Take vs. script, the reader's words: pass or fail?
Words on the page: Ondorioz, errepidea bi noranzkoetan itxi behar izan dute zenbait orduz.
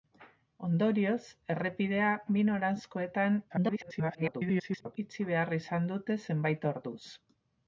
fail